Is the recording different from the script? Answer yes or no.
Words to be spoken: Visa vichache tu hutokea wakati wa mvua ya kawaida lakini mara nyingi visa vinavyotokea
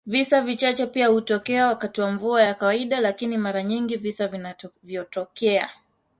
yes